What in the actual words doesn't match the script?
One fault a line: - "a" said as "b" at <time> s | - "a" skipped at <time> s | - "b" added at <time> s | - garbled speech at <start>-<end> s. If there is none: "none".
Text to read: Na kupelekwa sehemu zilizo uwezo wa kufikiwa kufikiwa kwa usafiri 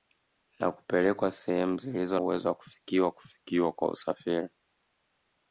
none